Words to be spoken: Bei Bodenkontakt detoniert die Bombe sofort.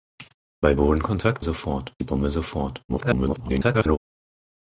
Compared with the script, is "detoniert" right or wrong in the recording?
wrong